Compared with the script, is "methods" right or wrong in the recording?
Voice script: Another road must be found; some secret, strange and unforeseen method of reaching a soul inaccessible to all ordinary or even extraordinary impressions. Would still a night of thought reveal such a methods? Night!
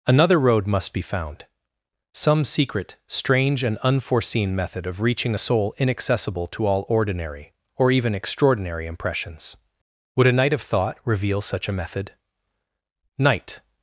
wrong